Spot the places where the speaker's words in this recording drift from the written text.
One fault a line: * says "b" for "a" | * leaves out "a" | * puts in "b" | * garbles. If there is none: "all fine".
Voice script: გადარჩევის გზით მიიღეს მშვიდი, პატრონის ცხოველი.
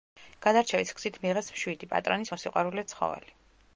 * puts in "მოსიყვარულე"